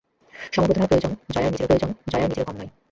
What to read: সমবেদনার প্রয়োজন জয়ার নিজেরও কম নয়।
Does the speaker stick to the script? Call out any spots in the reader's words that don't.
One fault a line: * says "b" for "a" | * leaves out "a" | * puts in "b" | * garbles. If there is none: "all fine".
* puts in "প্রয়োজন জয়ার নিজেরও"